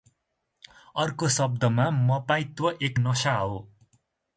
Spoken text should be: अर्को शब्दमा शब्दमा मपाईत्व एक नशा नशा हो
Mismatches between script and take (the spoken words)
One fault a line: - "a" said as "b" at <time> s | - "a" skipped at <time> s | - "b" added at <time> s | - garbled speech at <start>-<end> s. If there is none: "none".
- "शब्दमा" skipped at 1.9 s
- "नशा" skipped at 3.4 s